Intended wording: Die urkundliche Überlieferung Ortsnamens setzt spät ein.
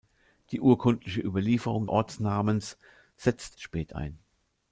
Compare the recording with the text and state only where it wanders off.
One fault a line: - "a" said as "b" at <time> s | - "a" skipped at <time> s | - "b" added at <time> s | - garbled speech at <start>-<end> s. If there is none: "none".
none